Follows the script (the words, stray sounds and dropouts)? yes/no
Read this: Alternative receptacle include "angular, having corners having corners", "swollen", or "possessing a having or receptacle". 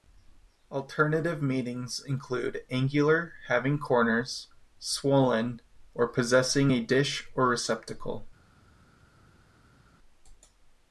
no